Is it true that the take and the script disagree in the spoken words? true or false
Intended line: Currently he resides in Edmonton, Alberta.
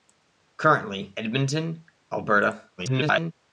true